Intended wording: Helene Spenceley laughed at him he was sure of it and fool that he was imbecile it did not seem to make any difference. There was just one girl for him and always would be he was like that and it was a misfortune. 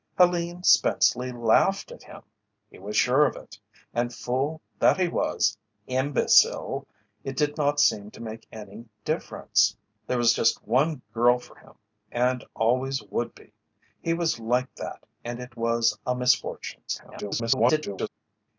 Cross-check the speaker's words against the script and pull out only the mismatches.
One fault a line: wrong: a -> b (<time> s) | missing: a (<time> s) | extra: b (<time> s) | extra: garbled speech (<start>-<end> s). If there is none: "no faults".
extra: garbled speech (16.9-18.1 s)